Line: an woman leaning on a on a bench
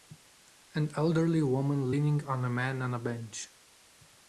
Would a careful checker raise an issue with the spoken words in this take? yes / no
yes